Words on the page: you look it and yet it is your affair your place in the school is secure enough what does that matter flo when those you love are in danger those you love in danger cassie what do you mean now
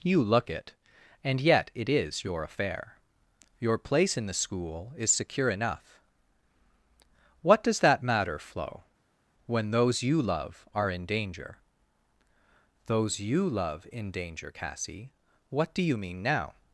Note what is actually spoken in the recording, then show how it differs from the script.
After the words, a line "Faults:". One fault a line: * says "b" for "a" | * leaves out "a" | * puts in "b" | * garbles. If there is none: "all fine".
you look it and yet it is your affair your place in the school is secure enough what does that matter flo when those you love are in danger those you love in danger cassie what do you mean now
Faults:
all fine